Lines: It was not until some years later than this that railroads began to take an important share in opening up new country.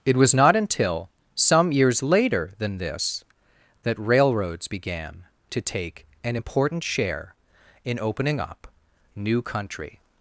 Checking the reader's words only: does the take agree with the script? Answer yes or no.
yes